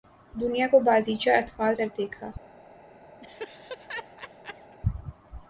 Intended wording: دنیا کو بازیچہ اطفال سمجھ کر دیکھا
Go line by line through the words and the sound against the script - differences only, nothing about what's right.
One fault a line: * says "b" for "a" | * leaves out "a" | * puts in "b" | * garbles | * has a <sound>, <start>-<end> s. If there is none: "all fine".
* leaves out "سمجھ"
* has a laugh, 3.2-4.8 s